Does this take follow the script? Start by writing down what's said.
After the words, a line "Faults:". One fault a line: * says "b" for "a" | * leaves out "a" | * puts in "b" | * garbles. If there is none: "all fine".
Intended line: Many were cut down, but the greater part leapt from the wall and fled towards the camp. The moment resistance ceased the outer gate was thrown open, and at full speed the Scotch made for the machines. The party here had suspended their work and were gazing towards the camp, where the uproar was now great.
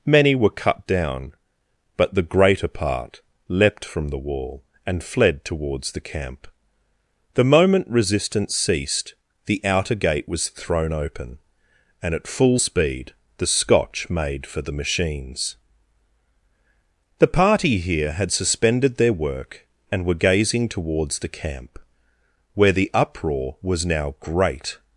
Many were cut down, but the greater part leapt from the wall and fled towards the camp. The moment resistance ceased the outer gate was thrown open, and at full speed the Scotch made for the machines. The party here had suspended their work and were gazing towards the camp, where the uproar was now great.
Faults:
all fine